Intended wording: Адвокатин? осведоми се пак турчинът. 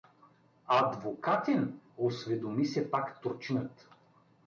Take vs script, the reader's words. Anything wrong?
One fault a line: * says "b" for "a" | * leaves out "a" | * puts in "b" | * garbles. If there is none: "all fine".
all fine